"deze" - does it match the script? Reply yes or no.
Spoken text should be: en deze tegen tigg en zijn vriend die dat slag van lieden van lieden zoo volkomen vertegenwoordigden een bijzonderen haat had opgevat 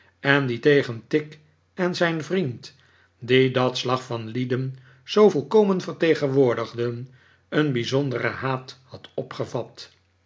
no